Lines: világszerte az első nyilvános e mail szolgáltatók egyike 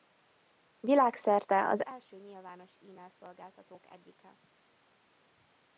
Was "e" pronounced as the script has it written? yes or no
yes